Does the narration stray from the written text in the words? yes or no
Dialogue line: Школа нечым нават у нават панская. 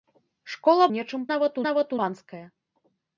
no